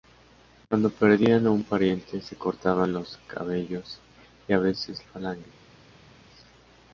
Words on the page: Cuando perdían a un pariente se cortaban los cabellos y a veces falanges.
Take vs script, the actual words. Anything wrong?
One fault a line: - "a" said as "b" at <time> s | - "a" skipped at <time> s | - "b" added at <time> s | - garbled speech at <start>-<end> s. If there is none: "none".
none